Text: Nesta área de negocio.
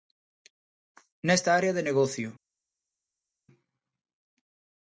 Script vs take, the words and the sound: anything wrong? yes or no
no